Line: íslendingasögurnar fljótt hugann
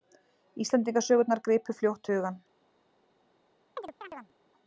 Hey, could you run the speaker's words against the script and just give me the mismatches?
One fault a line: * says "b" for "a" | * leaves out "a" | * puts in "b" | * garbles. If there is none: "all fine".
* puts in "gripu"